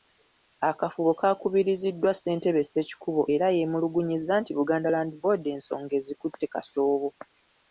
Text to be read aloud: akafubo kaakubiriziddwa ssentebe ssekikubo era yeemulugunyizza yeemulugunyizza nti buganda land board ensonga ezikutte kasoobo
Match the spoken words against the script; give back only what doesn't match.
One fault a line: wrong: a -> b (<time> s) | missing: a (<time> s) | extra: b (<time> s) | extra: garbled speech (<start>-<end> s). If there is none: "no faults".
missing: yeemulugunyizza (4.3 s)